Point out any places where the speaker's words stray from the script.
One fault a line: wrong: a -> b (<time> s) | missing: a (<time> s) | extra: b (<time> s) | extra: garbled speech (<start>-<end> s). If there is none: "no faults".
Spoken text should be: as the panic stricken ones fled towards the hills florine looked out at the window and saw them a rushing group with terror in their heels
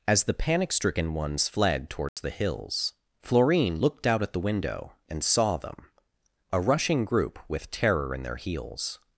no faults